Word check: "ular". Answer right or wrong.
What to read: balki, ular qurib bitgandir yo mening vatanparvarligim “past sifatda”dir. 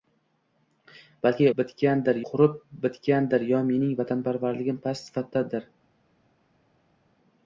wrong